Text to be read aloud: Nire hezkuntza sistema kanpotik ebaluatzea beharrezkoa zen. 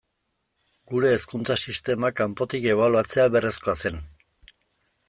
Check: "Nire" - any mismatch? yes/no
yes